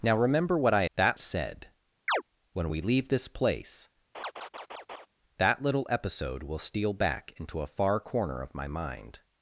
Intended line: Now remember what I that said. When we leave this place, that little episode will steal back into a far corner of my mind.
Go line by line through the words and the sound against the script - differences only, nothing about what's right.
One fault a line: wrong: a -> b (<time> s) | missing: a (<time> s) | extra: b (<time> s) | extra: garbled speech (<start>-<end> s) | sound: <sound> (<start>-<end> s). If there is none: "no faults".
sound: chirp (2.1-2.2 s)
sound: laugh (4.1-5.1 s)